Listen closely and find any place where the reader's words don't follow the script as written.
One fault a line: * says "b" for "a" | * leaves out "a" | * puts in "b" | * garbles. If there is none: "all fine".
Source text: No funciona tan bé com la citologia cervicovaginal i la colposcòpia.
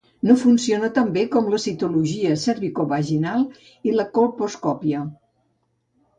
all fine